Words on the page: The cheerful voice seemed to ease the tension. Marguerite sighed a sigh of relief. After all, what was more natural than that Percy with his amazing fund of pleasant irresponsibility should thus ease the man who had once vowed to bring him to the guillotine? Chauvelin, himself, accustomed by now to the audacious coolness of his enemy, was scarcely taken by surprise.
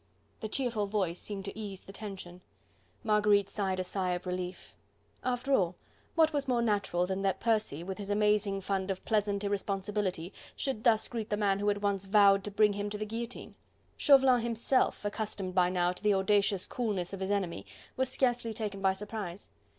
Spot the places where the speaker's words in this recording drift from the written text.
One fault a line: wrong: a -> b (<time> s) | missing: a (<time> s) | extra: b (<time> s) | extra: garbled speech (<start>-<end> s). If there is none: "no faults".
wrong: ease -> greet (11.1 s)